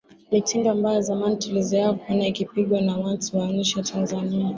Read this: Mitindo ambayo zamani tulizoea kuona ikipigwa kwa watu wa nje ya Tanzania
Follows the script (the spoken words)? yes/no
no